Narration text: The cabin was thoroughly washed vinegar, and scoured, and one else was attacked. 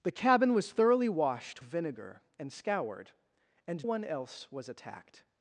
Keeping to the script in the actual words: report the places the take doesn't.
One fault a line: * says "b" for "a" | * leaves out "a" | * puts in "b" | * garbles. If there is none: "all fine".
all fine